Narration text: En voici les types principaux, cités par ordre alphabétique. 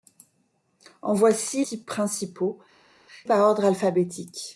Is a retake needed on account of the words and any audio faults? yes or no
yes